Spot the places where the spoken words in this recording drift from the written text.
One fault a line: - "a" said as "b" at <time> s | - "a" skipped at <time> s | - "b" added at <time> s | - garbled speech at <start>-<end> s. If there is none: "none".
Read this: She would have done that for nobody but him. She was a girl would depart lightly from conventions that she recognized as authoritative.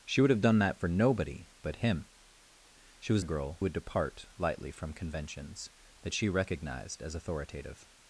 none